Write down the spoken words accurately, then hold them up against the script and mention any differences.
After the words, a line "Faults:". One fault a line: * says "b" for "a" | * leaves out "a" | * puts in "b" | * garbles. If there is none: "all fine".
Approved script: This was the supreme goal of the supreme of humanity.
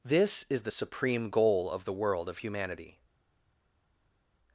This is the supreme goal of the world of humanity.
Faults:
* says "is" for "was"
* says "world" for "supreme"